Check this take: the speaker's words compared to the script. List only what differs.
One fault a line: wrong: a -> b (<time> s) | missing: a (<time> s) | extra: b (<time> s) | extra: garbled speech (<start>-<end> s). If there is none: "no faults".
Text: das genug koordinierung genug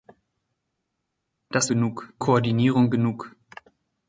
no faults